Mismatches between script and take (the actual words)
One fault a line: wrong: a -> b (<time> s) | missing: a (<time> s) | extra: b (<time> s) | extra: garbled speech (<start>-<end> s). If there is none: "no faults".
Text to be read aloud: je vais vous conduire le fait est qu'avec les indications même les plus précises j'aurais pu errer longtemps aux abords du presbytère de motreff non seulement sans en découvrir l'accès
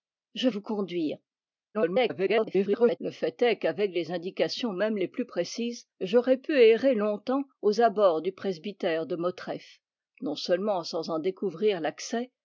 missing: vais (0.5 s)
extra: garbled speech (1.7-3.0 s)